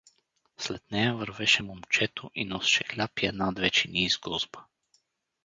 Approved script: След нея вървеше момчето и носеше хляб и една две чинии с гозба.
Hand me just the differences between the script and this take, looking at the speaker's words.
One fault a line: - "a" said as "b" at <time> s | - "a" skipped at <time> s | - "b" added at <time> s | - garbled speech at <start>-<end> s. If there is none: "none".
none